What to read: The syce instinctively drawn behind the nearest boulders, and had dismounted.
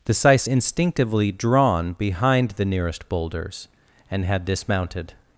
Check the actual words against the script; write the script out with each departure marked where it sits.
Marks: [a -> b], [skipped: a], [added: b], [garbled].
The syce instinctively drawn behind the nearest boulders, and had dismounted.